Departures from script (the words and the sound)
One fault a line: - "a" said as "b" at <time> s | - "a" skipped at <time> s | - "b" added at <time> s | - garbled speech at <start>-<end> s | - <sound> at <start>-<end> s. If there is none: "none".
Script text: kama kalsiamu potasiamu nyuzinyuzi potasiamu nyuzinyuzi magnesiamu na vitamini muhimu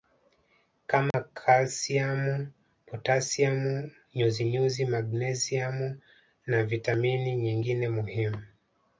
- dropout at 1.1-1.1 s
- "potasiamu nyuzinyuzi" skipped at 4.8 s
- "nyingine" added at 7.4 s